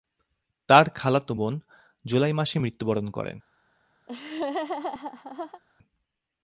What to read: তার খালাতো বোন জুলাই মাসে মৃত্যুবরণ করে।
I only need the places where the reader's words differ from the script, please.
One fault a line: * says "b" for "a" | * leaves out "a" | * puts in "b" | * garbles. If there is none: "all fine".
all fine